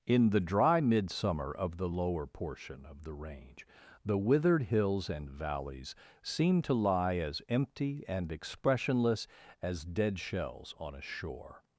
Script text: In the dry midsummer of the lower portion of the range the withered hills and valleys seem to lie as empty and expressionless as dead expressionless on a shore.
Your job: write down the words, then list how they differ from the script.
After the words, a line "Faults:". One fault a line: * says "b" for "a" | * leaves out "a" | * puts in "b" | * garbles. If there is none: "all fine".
In the dry midsummer of the lower portion of the range the withered hills and valleys seem to lie as empty and expressionless as dead shells on a shore.
Faults:
* says "shells" for "expressionless"